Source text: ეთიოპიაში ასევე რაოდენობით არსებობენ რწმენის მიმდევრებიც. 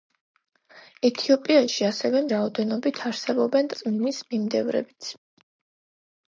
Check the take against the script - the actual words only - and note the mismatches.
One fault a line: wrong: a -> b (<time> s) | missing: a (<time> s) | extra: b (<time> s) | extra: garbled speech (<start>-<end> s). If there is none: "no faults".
no faults